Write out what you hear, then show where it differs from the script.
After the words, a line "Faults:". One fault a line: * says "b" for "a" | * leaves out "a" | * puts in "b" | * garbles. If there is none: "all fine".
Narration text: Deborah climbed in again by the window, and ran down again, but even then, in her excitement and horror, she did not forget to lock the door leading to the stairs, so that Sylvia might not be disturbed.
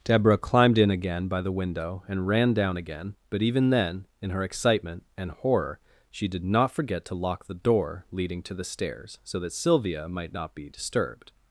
Deborah climbed in again by the window, and ran down again, but even then, in her excitement and horror, she did not forget to lock the door leading to the stairs, so that Sylvia might not be disturbed.
Faults:
all fine